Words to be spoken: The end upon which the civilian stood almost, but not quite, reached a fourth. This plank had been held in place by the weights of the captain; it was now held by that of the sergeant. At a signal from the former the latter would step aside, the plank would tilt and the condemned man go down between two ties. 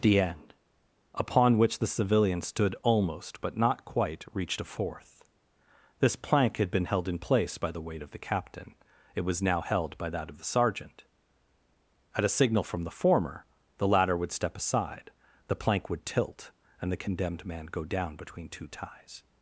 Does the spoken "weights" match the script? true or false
false